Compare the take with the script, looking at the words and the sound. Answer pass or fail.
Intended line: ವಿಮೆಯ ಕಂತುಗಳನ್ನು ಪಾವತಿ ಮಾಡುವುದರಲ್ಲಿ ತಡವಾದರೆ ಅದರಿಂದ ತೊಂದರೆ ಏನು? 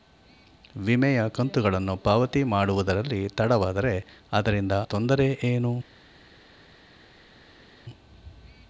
pass